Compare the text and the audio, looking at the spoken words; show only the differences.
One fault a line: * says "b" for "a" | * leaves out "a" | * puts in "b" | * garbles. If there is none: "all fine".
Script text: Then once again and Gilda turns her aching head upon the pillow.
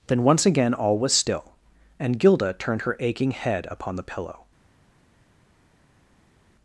* puts in "all was still"
* says "turned" for "turns"